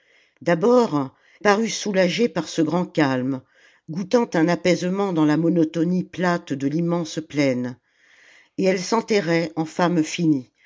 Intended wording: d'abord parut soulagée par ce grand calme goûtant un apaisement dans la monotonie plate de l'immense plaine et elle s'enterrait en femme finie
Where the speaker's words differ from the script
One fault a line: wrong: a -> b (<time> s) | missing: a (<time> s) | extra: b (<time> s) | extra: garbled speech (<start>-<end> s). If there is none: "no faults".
no faults